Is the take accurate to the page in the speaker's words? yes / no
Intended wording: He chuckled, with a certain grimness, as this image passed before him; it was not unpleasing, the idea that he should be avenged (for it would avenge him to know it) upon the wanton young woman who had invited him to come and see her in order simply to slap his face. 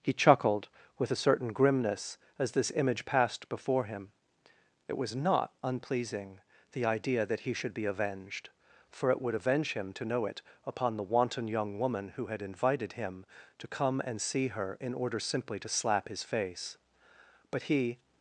no